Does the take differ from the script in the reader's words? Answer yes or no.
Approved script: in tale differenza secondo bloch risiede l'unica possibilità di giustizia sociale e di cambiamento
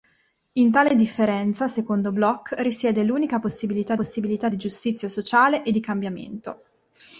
yes